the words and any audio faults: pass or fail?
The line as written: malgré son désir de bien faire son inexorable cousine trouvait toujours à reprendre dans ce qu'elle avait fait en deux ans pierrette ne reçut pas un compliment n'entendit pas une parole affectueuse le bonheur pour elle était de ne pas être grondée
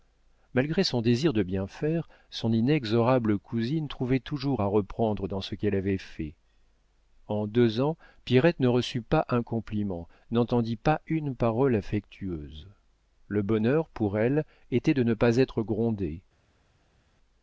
pass